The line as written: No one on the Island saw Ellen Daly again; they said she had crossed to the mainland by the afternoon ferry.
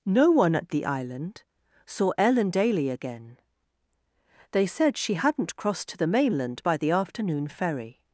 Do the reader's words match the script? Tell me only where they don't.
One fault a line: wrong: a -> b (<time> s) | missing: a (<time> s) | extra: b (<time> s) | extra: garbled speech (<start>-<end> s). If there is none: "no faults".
wrong: on -> at (0.6 s)
wrong: had -> hadn't (5.1 s)